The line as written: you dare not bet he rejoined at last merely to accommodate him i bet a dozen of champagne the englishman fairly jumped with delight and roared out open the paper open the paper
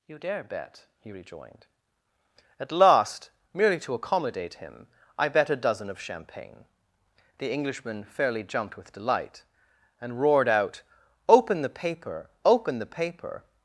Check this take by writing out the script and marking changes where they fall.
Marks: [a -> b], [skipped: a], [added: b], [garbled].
you dare [skipped: not] bet he rejoined at last merely to accommodate him i bet a dozen of champagne the englishman fairly jumped with delight and roared out open the paper open the paper